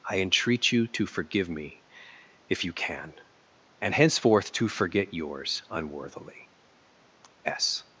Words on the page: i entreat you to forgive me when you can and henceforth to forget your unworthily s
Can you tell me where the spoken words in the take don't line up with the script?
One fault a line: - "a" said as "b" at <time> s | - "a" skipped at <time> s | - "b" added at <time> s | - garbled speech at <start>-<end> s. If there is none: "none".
- "when" said as "if" at 2.5 s
- "your" said as "yours" at 5.1 s